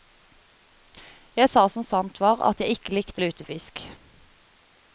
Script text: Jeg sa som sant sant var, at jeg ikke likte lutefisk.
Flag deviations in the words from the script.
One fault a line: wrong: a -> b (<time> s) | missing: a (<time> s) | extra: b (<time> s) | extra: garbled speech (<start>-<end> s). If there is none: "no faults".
missing: sant (2.2 s)